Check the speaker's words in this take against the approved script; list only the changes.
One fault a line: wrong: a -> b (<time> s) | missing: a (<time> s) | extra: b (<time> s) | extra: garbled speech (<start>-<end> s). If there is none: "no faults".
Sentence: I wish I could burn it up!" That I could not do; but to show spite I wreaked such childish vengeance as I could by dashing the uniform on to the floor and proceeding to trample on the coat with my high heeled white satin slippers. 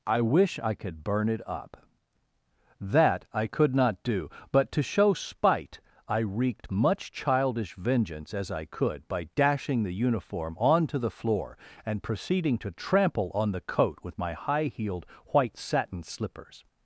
wrong: such -> much (6.7 s)